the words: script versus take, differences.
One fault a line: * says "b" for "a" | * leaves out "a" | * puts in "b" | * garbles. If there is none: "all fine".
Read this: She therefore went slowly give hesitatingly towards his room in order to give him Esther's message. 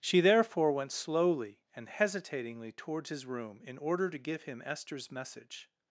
* says "and" for "give"